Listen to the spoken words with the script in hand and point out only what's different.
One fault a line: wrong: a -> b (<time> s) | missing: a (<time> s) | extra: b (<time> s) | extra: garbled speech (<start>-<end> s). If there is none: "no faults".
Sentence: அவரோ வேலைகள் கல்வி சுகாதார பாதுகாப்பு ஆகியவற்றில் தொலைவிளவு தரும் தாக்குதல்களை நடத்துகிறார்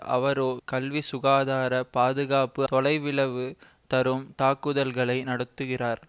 missing: வேலைகள் (0.5 s)
missing: ஆகியவற்றில் (2.6 s)